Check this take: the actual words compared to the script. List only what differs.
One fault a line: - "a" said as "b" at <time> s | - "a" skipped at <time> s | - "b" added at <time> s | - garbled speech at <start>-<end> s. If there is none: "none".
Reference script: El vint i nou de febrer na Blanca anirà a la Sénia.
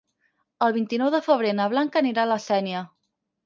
none